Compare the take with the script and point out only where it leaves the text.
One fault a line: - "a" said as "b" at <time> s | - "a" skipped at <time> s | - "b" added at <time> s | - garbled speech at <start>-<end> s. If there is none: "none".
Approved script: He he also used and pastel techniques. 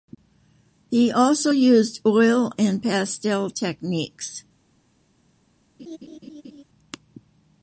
- "he" skipped at 1.1 s
- "oil" added at 2.1 s